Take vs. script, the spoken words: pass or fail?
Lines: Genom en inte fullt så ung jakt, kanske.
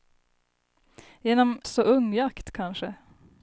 fail